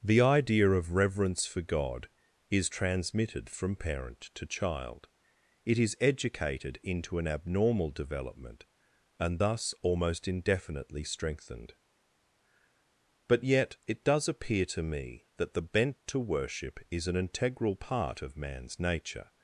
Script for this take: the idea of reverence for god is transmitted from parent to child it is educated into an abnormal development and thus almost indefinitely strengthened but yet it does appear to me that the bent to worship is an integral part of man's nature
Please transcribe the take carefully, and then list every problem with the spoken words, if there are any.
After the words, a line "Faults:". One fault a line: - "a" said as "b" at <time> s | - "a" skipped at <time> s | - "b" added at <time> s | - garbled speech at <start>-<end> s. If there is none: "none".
the idea of reverence for god is transmitted from parent to child it is educated into an abnormal development and thus almost indefinitely strengthened but yet it does appear to me that the bent to worship is an integral part of man's nature
Faults:
none